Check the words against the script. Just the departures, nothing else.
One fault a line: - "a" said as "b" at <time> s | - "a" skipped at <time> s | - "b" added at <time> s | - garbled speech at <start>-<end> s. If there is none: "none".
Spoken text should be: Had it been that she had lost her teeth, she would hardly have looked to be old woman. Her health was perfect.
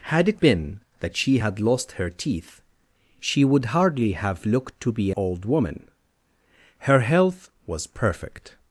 none